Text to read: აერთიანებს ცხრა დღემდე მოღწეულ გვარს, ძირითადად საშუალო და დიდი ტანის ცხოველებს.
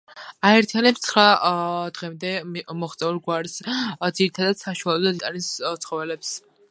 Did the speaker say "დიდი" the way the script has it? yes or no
no